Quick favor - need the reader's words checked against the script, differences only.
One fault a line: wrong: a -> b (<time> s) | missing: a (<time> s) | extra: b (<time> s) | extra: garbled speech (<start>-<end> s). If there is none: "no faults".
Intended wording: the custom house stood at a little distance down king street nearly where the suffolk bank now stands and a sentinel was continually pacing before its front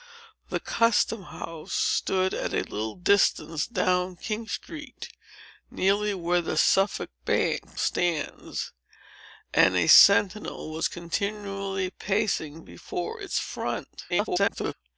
missing: now (7.8 s)
extra: garbled speech (14.1-14.7 s)